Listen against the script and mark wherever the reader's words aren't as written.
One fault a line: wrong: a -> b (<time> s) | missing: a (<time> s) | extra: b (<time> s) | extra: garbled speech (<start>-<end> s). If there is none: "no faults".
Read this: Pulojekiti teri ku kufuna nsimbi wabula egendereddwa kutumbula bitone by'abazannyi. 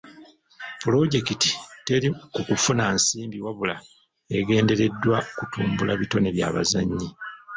no faults